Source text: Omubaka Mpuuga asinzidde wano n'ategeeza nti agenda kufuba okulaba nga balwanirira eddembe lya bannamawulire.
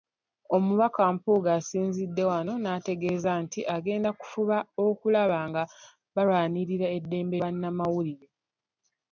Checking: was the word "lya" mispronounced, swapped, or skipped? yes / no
yes